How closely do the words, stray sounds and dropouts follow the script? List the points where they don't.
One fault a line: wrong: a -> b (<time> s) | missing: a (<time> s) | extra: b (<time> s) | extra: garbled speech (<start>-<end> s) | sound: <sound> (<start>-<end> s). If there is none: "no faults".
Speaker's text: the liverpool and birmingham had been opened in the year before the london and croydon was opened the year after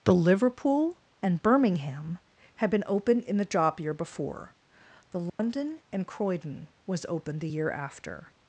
extra: job (3.5 s)
sound: dropout (5.3-5.4 s)